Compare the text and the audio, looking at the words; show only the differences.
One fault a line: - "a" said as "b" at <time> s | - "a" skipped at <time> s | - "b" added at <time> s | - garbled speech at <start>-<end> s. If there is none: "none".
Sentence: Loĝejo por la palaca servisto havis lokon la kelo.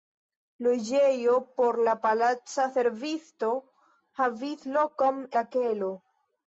none